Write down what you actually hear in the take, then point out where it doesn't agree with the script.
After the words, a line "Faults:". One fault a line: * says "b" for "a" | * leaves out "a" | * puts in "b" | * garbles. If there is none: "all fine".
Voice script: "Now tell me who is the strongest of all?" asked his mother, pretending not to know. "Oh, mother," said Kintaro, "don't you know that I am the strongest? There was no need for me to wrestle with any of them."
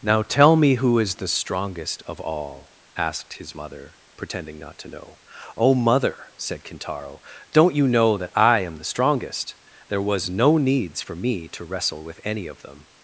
"Now tell me who is the strongest of all?" asked his mother, pretending not to know. "Oh, mother," said Kintaro, "don't you know that I am the strongest? There was no needs for me to wrestle with any of them."
Faults:
* says "needs" for "need"